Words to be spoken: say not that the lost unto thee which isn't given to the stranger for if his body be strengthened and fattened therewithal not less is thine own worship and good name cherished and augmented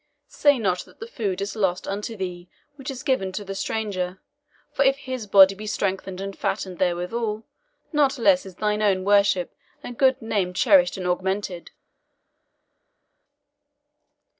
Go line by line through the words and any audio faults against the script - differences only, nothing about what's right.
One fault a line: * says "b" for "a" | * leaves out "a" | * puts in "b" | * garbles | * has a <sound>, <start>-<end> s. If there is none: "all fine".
* puts in "food is"
* says "is" for "isn't"